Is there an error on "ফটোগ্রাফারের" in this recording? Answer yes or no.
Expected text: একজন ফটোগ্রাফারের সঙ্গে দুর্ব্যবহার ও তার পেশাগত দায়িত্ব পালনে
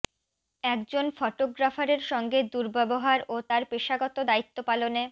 no